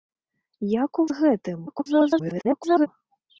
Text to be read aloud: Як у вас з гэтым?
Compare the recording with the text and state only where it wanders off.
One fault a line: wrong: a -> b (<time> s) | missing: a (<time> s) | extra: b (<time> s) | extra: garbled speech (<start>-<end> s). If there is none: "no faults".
missing: вас (1.1 s)
extra: garbled speech (1.7-2.9 s)